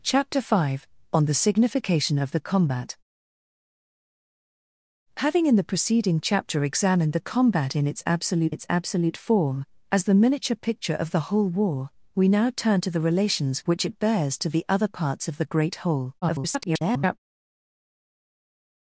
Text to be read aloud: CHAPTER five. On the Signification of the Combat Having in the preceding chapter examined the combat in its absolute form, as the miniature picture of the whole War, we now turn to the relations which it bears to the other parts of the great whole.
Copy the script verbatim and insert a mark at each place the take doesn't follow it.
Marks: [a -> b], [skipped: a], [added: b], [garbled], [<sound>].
CHAPTER five. On the Signification of the Combat Having in the preceding chapter examined the combat in its absolute [added: its absolute] form, as the miniature picture of the whole War, we now turn to the relations which it bears to the other parts of the great whole. [garbled]